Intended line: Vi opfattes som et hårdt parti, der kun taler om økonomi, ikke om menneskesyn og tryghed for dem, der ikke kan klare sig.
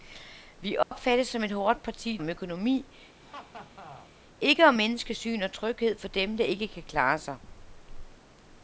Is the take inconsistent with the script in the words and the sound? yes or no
yes